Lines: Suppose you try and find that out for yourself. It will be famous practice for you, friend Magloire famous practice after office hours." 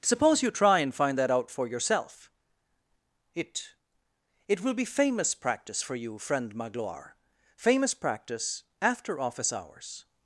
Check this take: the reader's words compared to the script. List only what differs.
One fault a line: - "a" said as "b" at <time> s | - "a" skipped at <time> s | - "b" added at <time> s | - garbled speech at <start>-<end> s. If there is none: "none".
- "It" added at 4.5 s